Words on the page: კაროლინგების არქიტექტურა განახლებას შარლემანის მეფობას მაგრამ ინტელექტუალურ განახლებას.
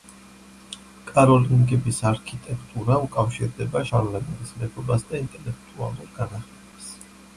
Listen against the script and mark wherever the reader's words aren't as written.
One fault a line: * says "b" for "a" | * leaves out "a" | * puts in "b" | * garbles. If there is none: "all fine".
* says "უკავშირდება" for "განახლებას"
* says "და" for "მაგრამ"